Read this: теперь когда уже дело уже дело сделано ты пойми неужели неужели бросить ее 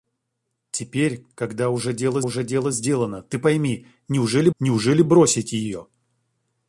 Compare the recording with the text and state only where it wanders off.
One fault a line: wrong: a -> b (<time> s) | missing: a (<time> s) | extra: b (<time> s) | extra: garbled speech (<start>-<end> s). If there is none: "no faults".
no faults